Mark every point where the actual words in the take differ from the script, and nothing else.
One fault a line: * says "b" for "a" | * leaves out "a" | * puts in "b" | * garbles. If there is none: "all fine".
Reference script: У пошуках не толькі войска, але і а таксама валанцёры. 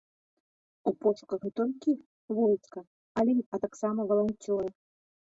all fine